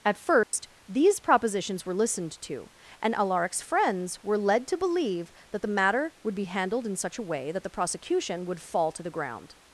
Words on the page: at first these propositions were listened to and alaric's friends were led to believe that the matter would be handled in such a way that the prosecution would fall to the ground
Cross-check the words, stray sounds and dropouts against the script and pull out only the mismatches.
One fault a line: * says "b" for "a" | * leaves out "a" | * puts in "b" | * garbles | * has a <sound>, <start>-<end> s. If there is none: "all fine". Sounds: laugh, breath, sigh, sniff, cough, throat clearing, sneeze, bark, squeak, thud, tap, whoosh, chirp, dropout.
* has a dropout, 0.4-0.5 s